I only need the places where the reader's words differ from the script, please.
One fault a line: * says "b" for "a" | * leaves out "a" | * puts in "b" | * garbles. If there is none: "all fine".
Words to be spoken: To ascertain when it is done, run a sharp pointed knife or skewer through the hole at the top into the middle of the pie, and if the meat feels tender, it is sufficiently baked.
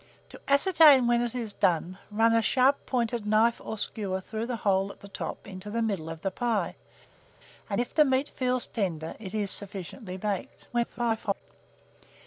* garbles